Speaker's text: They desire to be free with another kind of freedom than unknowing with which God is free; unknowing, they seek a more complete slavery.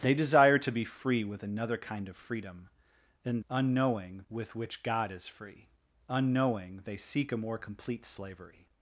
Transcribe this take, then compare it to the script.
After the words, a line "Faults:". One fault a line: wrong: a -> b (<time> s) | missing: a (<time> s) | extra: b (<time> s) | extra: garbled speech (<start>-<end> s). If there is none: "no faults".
They desire to be free with another kind of freedom than unknowing with which God is free; unknowing, they seek a more complete slavery.
Faults:
no faults